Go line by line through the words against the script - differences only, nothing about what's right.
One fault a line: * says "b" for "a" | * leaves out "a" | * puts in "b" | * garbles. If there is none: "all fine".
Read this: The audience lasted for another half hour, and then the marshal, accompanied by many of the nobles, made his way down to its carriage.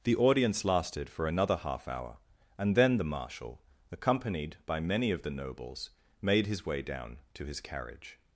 * says "his" for "its"